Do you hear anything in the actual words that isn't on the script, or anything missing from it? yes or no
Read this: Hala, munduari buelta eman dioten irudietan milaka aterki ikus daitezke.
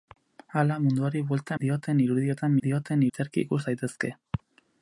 yes